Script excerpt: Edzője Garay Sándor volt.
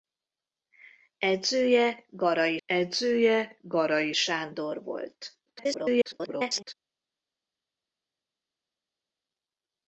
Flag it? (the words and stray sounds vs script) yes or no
yes